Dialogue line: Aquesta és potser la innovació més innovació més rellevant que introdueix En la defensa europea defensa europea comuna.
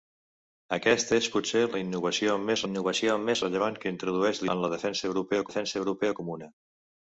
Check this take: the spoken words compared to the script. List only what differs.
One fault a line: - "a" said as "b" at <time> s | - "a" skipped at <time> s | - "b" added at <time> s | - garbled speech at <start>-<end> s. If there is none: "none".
none